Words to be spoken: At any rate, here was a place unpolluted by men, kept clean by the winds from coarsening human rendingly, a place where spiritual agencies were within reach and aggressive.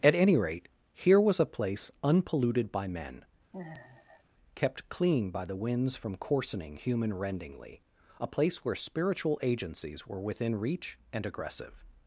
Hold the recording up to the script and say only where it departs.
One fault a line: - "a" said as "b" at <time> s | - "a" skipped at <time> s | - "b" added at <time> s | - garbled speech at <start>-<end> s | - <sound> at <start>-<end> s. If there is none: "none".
- sigh at 3.5-4.2 s